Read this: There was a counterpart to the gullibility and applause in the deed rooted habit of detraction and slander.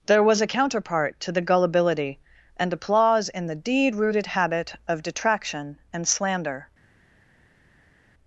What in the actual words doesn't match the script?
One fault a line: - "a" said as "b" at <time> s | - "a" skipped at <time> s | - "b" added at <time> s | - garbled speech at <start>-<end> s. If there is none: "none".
none